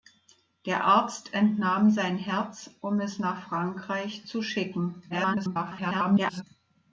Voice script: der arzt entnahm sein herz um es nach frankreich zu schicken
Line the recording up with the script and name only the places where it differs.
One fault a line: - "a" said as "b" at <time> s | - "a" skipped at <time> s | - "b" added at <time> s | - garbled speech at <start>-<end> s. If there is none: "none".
- garbled speech at 5.1-6.4 s